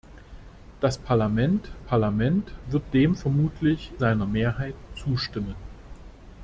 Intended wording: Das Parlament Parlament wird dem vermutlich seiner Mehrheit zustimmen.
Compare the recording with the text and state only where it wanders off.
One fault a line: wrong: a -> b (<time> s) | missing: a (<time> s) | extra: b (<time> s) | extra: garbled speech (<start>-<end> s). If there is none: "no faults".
no faults